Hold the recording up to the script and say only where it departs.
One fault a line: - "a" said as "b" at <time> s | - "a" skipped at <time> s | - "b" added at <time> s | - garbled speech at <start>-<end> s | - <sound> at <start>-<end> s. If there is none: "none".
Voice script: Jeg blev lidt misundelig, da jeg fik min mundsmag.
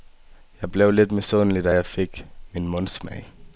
none